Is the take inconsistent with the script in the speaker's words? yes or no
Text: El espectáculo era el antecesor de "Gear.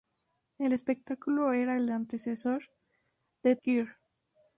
no